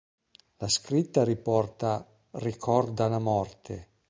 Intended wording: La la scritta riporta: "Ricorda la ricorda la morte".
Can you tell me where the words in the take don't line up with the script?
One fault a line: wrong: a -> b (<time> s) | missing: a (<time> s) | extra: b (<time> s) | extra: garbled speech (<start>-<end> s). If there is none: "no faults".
missing: la (0.7 s)
missing: ricorda la (3.2 s)